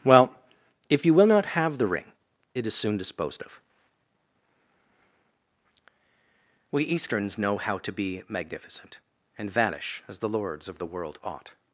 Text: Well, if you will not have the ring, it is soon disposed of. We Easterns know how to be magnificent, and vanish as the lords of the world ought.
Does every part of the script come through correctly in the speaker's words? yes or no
yes